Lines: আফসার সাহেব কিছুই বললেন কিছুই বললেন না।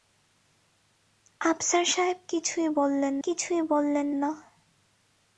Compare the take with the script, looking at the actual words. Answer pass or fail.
pass